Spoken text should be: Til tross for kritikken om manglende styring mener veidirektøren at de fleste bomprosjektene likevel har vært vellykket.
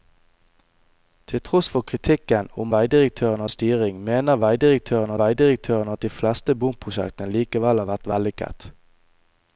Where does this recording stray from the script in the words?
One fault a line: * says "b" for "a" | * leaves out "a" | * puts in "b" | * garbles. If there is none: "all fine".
* says "veidirektøren" for "manglende"
* puts in "veidirektøren"